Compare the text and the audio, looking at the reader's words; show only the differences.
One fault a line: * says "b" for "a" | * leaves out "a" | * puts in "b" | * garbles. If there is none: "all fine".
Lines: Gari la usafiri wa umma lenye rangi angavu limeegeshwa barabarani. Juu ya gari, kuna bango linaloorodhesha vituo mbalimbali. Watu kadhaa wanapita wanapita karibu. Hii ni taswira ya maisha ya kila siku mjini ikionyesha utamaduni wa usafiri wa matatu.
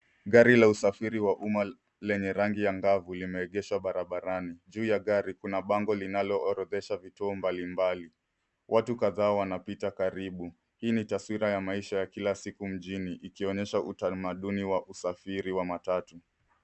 * leaves out "wanapita"